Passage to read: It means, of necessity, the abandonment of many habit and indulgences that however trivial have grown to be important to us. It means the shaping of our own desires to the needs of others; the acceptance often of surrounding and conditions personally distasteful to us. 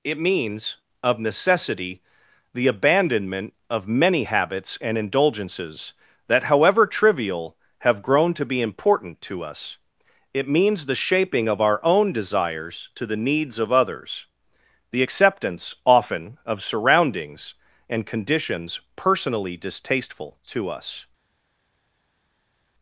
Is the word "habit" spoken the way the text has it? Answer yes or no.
no